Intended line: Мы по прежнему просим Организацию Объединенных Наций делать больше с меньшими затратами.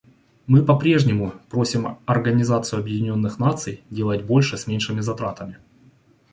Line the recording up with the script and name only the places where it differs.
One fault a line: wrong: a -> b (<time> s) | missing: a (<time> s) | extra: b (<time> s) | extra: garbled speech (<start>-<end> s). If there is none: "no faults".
no faults